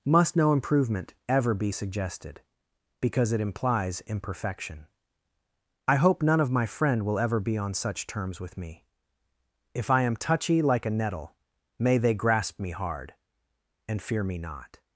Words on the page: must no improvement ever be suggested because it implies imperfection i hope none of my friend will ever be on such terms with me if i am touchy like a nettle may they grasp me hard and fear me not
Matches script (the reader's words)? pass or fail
pass